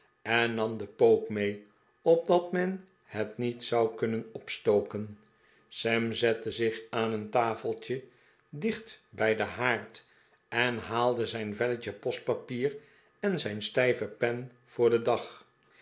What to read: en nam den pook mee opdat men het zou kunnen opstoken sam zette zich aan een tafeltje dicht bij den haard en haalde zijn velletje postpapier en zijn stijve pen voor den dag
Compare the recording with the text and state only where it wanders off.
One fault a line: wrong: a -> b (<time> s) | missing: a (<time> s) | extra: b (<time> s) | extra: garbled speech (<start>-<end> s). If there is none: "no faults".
extra: niet (3.4 s)